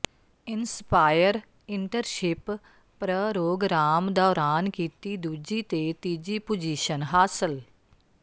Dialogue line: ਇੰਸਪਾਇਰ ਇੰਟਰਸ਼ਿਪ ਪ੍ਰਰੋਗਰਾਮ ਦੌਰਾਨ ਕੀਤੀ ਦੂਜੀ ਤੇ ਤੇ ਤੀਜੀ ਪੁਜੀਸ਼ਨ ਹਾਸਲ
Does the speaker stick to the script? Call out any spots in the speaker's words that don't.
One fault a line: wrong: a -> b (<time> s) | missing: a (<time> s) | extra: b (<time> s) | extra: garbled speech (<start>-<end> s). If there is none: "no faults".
missing: ਤੇ (5.9 s)